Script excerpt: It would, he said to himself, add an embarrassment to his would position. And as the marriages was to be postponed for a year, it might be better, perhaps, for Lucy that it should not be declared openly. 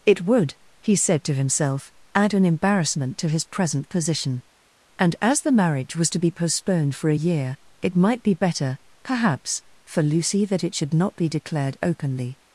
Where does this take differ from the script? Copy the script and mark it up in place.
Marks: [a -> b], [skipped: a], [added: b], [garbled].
It would, he said to himself, add an embarrassment to his [would -> present] position. And as the [marriages -> marriage] was to be postponed for a year, it might be better, perhaps, for Lucy that it should not be declared openly.